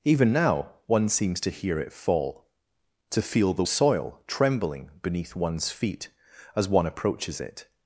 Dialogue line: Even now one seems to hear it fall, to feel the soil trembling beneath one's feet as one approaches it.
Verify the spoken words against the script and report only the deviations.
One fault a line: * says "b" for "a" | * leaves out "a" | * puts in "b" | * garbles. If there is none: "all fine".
all fine